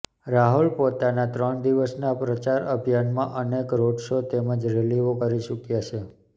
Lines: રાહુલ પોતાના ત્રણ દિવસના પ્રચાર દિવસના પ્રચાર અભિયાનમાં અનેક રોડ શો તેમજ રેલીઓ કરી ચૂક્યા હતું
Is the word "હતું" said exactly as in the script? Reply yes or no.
no